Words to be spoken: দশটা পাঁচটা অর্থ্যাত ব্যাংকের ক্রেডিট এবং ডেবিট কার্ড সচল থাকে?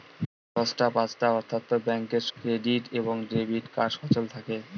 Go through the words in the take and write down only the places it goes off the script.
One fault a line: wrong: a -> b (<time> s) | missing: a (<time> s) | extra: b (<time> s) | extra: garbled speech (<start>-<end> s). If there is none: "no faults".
no faults